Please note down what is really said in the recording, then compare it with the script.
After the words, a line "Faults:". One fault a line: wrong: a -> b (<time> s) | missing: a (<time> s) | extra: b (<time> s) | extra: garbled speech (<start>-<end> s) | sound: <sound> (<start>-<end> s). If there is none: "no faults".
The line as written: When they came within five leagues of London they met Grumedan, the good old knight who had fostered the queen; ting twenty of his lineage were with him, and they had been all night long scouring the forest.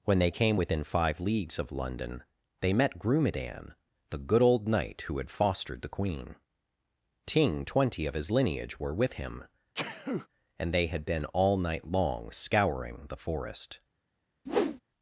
When they came within five leagues of London they met Grumedan, the good old knight who had fostered the queen; ting twenty of his lineage were with him, and they had been all night long scouring the forest.
Faults:
sound: sneeze (9.7-10.3 s)
sound: whoosh (14.5-14.8 s)